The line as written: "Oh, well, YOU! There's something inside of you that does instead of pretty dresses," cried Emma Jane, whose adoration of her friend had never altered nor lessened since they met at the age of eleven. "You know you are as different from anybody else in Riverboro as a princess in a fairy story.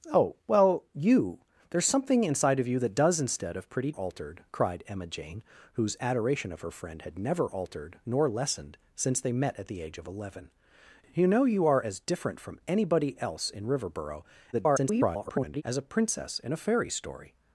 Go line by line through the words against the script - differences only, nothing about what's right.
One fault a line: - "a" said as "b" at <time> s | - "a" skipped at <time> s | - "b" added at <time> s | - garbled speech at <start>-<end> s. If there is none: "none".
- "dresses" said as "altered" at 3.9 s
- garbled speech at 14.5-15.6 s